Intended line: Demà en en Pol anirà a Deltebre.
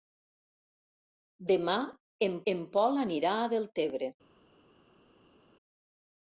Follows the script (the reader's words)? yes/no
yes